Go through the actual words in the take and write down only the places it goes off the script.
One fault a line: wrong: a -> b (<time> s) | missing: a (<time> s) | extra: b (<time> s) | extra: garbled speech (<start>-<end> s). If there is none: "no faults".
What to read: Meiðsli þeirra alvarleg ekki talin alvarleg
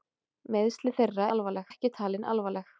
no faults